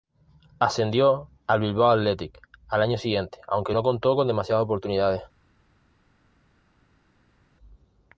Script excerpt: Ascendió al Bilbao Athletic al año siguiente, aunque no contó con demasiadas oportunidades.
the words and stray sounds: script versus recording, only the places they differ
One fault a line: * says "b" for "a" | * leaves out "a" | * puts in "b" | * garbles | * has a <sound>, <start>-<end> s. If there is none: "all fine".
all fine